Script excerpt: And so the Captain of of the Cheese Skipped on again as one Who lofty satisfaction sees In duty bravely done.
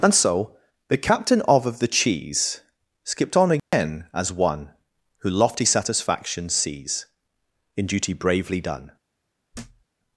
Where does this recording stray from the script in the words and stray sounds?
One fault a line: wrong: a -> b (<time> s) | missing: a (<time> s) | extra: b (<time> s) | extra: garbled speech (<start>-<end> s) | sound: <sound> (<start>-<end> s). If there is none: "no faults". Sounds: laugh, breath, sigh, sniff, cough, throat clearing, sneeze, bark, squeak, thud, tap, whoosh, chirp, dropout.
sound: dropout (3.6-3.7 s)
sound: thud (9.5-9.8 s)